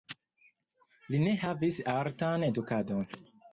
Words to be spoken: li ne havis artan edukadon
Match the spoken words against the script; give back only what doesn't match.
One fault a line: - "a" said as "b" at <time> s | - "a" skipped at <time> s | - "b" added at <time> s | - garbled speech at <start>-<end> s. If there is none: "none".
none